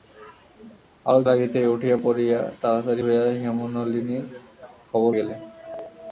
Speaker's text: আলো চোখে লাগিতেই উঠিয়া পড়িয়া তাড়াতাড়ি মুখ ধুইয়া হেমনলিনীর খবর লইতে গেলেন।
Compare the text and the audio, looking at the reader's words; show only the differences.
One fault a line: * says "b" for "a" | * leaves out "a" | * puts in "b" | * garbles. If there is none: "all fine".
* leaves out "চোখে"
* leaves out "মুখ"
* leaves out "লইতে"